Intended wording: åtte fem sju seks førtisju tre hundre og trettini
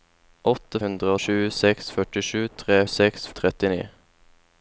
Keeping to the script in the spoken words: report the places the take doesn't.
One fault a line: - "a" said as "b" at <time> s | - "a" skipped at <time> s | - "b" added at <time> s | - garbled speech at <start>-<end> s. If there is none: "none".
- "fem" said as "hundre" at 0.8 s
- "hundre" said as "seks" at 2.9 s